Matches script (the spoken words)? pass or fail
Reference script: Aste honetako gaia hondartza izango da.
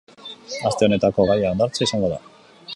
pass